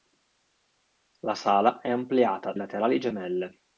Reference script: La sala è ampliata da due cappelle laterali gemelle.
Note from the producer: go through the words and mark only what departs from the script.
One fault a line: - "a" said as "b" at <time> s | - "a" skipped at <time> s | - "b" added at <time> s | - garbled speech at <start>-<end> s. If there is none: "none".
- "da due cappelle" skipped at 2.5 s